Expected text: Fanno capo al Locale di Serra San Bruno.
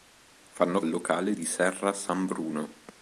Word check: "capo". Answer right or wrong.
wrong